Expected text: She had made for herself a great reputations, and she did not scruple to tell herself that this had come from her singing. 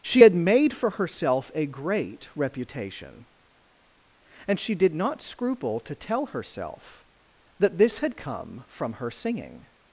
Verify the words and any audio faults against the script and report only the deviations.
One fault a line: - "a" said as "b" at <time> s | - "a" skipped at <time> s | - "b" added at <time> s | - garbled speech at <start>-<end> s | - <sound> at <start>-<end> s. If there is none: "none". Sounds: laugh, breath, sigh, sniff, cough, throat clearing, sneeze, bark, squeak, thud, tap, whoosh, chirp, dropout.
- "reputations" said as "reputation" at 2.3 s